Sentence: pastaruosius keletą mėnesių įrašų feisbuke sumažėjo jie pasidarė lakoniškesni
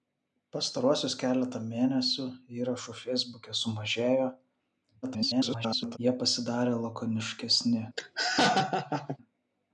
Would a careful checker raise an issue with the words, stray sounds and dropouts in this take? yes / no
yes